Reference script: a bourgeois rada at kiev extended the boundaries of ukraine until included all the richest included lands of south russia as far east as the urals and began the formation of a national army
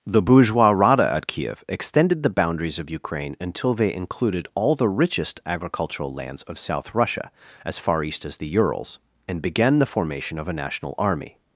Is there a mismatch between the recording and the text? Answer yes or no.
yes